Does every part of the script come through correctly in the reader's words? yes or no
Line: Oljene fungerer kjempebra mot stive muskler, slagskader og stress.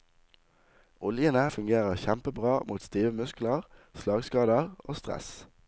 yes